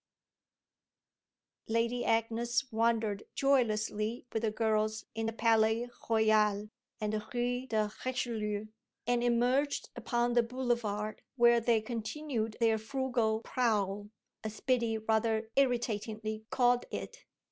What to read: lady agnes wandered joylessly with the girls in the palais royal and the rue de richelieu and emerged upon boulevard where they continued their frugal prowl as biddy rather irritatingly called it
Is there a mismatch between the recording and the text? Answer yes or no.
yes